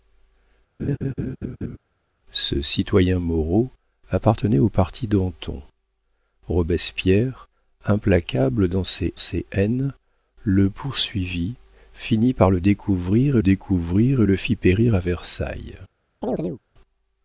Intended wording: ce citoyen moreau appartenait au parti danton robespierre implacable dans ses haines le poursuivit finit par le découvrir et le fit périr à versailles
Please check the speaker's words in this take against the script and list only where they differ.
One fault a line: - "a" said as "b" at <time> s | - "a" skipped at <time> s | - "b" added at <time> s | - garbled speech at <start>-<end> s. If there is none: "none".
- "ses" added at 9.2 s
- "découvrir" added at 13.4 s